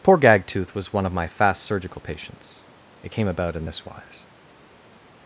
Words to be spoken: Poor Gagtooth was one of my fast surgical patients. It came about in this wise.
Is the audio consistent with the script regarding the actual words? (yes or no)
yes